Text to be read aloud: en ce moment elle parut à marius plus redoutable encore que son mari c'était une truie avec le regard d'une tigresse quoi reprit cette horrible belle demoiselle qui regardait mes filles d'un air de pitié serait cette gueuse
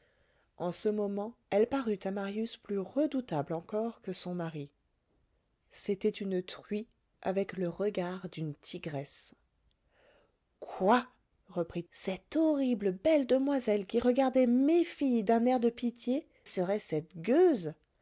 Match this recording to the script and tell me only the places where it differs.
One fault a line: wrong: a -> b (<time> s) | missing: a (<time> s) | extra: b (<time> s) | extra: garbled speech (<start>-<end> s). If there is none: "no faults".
no faults